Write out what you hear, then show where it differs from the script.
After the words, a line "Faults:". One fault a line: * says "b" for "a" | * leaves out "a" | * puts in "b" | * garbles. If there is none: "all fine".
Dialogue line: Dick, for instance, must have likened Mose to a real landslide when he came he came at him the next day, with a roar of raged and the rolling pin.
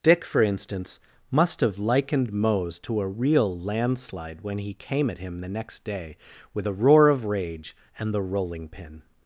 Dick, for instance, must have likened Mose to a real landslide when he came at him the next day, with a roar of rage and the rolling pin.
Faults:
* leaves out "he came"
* says "rage" for "raged"